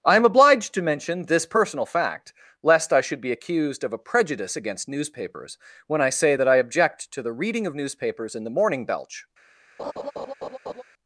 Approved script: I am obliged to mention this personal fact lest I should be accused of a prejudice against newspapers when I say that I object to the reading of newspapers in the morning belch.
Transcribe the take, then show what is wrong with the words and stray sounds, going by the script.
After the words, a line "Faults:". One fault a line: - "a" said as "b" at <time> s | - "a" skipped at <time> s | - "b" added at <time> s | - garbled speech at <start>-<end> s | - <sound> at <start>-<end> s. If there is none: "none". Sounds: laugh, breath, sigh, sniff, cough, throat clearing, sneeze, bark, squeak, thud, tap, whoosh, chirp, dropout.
I am obliged to mention this personal fact lest I should be accused of a prejudice against newspapers when I say that I object to the reading of newspapers in the morning belch.
Faults:
- laugh at 9.8-10.8 s